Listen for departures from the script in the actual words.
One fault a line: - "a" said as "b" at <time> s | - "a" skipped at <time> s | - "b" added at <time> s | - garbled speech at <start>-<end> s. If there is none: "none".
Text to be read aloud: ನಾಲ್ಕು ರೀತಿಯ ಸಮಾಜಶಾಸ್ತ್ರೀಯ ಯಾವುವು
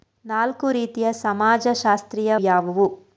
none